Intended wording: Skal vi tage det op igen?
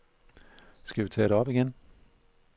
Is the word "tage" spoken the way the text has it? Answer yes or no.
yes